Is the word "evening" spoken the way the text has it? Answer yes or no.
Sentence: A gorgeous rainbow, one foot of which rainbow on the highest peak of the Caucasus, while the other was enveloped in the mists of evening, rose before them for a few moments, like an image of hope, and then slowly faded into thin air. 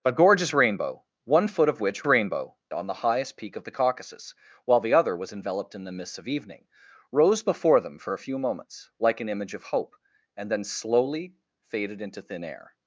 yes